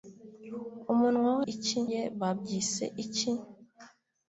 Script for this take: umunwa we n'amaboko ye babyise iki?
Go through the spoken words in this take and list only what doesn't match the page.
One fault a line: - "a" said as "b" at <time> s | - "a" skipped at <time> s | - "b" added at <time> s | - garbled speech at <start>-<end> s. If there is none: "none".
- "n'amaboko" said as "iki" at 1.5 s